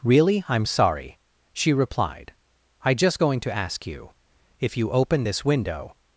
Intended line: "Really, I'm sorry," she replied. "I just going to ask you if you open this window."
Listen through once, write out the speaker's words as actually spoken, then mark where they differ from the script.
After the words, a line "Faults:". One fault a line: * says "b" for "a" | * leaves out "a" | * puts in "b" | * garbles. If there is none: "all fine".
"Really, I'm sorry," she replied. "I just going to ask you if you open this window."
Faults:
all fine